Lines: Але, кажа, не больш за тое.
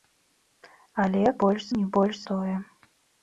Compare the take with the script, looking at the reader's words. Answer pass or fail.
fail